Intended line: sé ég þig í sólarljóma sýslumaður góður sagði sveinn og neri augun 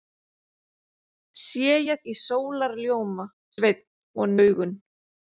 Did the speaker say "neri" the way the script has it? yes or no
no